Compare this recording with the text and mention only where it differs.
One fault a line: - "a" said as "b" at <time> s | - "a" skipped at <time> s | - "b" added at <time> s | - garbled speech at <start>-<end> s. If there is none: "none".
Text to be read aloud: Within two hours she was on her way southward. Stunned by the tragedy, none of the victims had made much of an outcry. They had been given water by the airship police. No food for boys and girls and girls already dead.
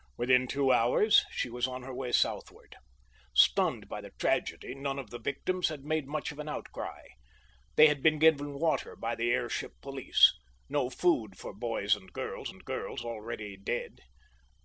none